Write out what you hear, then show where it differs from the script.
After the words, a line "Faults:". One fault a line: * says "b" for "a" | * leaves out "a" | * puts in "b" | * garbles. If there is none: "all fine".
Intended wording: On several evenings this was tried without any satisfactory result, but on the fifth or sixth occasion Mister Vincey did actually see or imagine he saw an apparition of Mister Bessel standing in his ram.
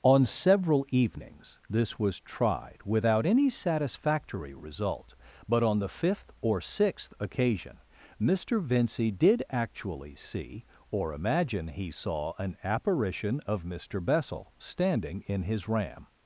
On several evenings this was tried without any satisfactory result, but on the fifth or sixth occasion Mister Vincey did actually see or imagine he saw an apparition of Mister Bessel standing in his ram.
Faults:
all fine